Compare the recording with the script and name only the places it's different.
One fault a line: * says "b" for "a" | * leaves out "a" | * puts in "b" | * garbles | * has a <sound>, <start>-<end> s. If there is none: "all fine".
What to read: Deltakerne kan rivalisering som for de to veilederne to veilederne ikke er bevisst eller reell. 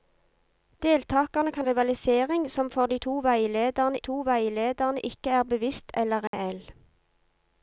* has a dropout, 6.3-6.3 s